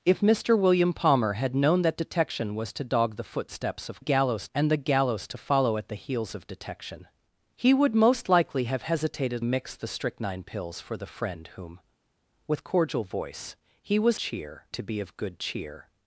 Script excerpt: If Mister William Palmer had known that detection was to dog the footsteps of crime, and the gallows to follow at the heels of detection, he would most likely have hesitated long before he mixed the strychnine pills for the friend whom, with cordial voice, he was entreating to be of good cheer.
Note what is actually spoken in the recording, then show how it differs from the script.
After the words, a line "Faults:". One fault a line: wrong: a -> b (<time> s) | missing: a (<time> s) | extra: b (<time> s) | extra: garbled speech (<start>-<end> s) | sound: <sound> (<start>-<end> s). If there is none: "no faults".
If Mister William Palmer had known that detection was to dog the footsteps of gallows, and the gallows to follow at the heels of detection, he would most likely have hesitated mixed the strychnine pills for the friend whom, with cordial voice, he was cheer to be of good cheer.
Faults:
wrong: crime -> gallows (4.0 s)
missing: long before he (9.4 s)
wrong: entreating -> cheer (14.2 s)